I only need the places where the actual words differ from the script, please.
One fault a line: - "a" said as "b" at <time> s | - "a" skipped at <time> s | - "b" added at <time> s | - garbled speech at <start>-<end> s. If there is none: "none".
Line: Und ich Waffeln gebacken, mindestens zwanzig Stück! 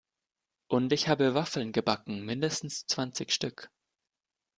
- "habe" added at 1.1 s